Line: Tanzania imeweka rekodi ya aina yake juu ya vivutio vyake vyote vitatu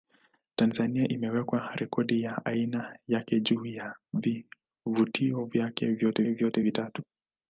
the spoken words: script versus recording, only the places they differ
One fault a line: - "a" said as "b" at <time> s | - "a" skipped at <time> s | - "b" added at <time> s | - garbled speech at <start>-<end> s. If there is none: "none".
- "vyote" added at 6.3 s